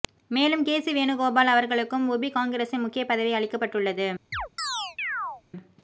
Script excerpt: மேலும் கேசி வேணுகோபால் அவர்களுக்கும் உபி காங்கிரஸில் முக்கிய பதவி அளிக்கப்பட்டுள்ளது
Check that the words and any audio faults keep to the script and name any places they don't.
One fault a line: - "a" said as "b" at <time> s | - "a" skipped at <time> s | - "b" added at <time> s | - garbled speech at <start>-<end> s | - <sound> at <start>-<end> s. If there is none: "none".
- chirp at 4.3-5.4 s